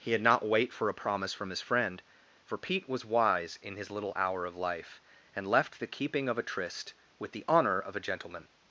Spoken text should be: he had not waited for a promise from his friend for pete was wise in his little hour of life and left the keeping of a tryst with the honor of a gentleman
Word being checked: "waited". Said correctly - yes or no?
no